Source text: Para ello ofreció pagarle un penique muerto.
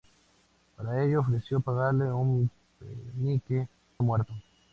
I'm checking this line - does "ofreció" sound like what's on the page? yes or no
yes